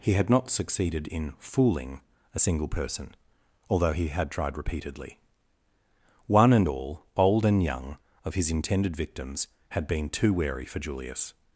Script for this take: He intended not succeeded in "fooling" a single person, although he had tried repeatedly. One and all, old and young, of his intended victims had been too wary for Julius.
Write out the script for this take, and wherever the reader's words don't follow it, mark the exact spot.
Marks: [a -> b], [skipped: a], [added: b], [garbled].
He [intended -> had] not succeeded in "fooling" a single person, although he had tried repeatedly. One and all, old and young, of his intended victims had been too wary for Julius.